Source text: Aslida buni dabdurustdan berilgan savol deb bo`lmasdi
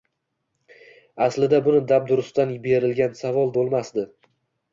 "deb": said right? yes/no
no